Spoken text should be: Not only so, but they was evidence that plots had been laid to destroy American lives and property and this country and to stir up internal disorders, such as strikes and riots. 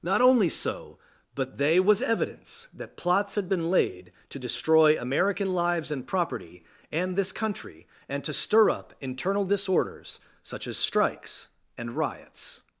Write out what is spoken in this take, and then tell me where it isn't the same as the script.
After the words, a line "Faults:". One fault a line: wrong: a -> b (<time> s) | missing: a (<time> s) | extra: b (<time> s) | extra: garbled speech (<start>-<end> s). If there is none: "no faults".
Not only so, but they was evidence that plots had been laid to destroy American lives and property and this country and to stir up internal disorders, such as strikes and riots.
Faults:
no faults